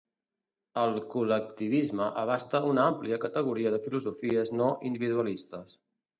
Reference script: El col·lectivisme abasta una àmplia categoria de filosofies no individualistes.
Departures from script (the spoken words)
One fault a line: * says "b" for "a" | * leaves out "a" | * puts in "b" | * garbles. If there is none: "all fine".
all fine